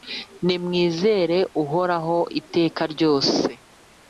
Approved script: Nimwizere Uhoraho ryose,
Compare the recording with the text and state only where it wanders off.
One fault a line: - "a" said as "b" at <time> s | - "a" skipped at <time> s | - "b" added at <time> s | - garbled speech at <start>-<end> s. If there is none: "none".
- "iteka" added at 2.4 s